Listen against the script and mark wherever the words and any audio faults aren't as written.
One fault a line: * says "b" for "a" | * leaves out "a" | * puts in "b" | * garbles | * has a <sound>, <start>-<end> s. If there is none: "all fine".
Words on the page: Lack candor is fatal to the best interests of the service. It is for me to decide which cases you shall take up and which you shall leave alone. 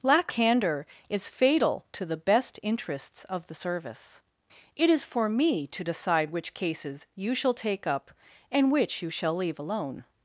all fine